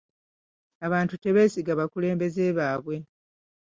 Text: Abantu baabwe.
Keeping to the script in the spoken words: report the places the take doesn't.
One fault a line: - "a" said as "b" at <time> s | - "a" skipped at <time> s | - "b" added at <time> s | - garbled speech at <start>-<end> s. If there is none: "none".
- "tebeesiga bakulembeze" added at 1.2 s